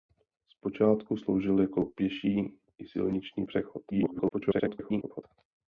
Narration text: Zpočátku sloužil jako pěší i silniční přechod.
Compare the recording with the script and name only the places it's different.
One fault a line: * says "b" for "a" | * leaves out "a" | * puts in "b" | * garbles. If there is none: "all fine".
* garbles